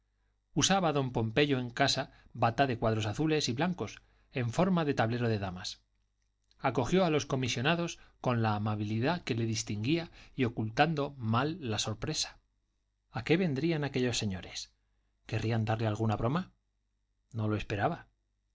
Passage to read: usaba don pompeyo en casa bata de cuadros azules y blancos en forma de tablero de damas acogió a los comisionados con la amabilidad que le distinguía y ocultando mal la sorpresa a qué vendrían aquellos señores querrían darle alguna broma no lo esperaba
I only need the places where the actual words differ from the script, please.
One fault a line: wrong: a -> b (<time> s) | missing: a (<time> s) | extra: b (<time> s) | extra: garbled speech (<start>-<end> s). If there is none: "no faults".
no faults